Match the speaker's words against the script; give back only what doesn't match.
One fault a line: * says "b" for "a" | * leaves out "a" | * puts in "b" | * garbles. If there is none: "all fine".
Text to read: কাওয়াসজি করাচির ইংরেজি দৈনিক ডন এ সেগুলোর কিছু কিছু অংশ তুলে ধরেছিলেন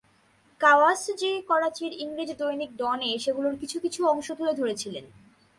all fine